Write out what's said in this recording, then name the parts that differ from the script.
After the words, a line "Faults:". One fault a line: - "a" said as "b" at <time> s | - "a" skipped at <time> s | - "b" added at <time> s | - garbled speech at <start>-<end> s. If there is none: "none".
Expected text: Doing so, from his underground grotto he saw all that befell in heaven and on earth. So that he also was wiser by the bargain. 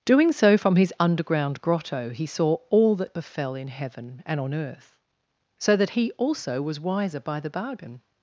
Doing so, from his underground grotto he saw all that befell in heaven and on earth. So that he also was wiser by the bargain.
Faults:
none